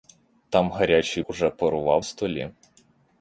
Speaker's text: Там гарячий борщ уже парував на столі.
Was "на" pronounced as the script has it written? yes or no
no